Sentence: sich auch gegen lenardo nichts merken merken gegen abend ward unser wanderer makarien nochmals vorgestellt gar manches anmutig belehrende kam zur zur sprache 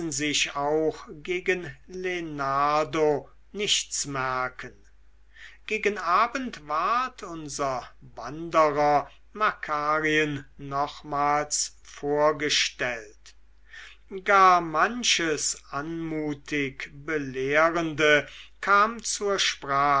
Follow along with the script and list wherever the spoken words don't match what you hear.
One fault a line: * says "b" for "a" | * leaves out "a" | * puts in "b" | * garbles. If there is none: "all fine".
* leaves out "merken"
* leaves out "zur"